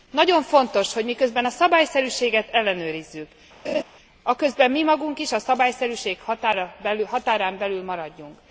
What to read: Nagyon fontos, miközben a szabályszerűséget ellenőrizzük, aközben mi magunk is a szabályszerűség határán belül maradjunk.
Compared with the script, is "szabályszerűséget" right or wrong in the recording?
right